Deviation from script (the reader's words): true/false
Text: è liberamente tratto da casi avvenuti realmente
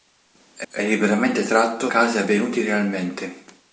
true